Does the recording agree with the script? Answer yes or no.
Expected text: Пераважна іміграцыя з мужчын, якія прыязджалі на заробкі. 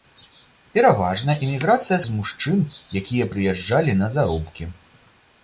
yes